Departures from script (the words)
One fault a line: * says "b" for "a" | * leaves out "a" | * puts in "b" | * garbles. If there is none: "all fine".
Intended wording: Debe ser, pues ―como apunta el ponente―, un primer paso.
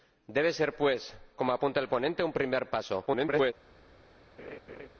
* garbles